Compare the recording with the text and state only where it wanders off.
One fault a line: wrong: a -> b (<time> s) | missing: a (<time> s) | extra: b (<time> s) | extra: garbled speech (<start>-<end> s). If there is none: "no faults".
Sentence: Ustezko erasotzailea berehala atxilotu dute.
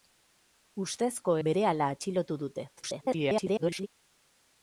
missing: erasotzailea (1.4 s)
extra: garbled speech (2.8-3.9 s)